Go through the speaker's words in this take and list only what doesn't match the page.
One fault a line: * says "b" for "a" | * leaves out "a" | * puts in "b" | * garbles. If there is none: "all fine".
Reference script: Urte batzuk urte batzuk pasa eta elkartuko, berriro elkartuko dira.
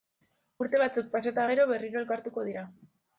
* leaves out "urte batzuk"
* says "gero" for "elkartuko"